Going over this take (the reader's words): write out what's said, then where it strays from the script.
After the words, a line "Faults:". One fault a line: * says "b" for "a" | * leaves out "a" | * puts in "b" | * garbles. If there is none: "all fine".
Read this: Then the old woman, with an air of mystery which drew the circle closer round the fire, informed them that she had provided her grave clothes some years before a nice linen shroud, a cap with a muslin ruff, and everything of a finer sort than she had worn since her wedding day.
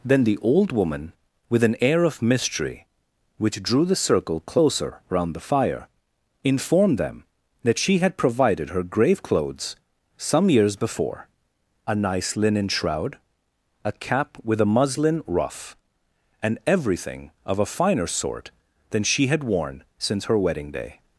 Then the old woman, with an air of mystery which drew the circle closer round the fire, informed them that she had provided her grave clothes some years before a nice linen shroud, a cap with a muslin ruff, and everything of a finer sort than she had worn since her wedding day.
Faults:
all fine